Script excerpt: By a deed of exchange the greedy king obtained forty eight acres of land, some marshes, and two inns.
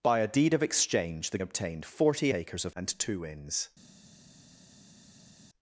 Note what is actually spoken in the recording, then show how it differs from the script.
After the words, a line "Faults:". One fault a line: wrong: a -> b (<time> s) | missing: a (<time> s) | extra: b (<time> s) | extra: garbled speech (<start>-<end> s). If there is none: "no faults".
By a deed of exchange the obtained forty acres of and two inns.
Faults:
missing: greedy king (1.4 s)
missing: eight (2.3 s)
missing: land some marshes (2.8 s)